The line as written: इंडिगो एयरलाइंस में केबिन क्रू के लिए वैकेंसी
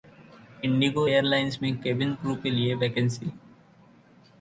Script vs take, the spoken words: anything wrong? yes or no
no